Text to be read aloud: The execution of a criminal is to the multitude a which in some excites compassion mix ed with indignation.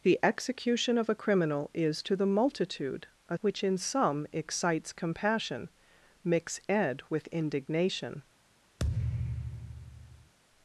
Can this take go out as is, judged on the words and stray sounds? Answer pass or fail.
fail